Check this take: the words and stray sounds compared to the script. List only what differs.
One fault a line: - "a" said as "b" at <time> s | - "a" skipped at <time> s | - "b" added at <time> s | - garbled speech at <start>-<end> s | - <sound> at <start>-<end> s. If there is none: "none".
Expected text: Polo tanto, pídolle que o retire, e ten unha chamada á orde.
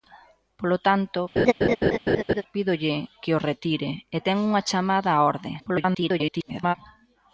- laugh at 1.4-2.4 s
- garbled speech at 5.6-6.8 s